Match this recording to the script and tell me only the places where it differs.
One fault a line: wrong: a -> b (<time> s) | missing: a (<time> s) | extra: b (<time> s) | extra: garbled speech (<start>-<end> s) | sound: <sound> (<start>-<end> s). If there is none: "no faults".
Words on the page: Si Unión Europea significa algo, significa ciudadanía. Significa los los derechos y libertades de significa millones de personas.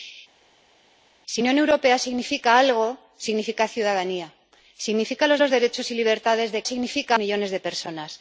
no faults